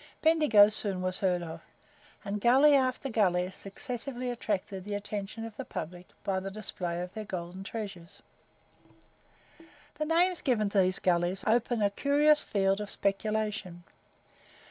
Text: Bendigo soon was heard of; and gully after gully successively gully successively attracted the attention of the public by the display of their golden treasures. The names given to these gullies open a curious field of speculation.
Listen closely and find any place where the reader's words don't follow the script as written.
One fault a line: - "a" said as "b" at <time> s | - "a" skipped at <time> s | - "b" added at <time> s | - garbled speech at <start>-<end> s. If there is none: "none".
- "gully successively" skipped at 4.3 s